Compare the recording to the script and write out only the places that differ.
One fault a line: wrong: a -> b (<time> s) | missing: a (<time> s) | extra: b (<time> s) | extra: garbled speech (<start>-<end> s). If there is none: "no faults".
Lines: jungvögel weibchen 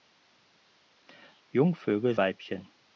no faults